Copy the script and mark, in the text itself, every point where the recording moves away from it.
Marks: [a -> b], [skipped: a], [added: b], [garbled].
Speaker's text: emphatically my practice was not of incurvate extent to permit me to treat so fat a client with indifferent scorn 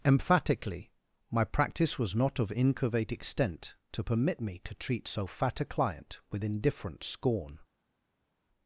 emphatically my practice was not of incurvate extent to permit me to treat so fat a client with indifferent scorn